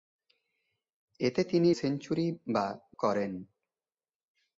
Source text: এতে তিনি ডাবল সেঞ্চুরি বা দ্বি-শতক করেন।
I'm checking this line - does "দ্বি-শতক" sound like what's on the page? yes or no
no